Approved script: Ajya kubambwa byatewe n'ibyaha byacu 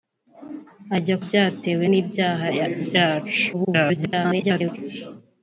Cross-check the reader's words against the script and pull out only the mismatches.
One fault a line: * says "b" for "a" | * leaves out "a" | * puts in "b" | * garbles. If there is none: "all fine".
* leaves out "kubambwa"
* garbles